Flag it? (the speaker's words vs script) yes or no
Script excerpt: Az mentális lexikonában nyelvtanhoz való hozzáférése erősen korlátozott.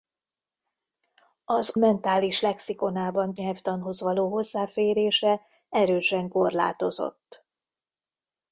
no